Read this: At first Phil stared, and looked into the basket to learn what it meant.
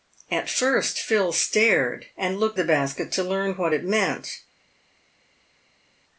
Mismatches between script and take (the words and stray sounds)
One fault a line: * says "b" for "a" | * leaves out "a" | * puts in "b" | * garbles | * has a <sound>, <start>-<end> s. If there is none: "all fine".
* leaves out "into"